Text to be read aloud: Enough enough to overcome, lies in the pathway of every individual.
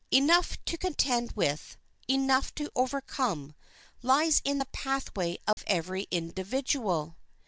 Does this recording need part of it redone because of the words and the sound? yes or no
yes